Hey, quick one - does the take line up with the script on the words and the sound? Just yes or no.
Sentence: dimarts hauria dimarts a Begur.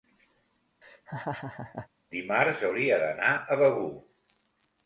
no